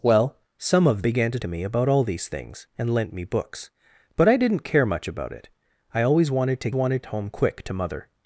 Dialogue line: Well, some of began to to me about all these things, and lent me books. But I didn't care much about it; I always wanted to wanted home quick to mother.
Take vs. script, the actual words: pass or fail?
pass